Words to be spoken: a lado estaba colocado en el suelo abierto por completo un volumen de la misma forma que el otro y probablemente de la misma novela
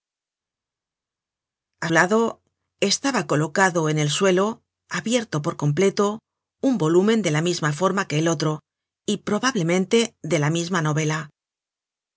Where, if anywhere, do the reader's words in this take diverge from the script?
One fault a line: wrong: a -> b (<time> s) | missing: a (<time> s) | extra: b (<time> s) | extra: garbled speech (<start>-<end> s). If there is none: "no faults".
no faults